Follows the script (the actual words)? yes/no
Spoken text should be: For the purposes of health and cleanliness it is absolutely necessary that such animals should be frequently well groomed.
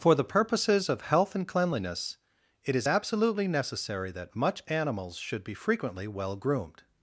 no